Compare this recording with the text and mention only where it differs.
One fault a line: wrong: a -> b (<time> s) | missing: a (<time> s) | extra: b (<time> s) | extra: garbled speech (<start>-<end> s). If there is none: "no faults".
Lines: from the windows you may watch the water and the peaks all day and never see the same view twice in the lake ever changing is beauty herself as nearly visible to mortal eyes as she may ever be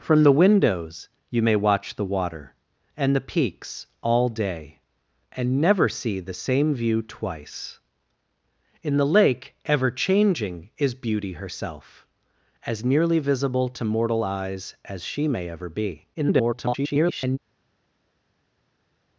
extra: garbled speech (16.1-17.4 s)